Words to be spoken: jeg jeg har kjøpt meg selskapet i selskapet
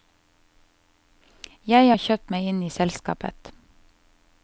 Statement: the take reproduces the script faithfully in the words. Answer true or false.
false